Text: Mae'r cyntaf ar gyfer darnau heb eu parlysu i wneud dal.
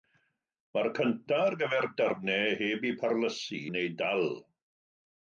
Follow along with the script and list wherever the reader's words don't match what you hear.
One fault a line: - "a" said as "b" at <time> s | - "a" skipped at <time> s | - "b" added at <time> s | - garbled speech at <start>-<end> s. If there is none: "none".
- "i" skipped at 3.6 s